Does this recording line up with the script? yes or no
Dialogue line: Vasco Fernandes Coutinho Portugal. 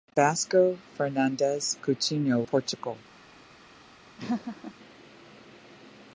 yes